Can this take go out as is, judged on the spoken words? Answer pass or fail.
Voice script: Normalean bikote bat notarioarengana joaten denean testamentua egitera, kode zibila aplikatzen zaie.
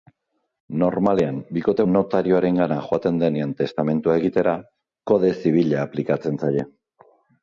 fail